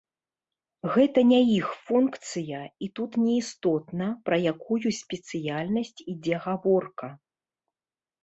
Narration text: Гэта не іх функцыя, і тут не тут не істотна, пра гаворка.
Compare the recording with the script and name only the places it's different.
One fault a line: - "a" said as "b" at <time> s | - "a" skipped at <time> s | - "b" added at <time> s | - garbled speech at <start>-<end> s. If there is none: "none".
- "тут не істотна пра" said as "істотна пра якую спецыяльнасць ідзе" at 3.4 s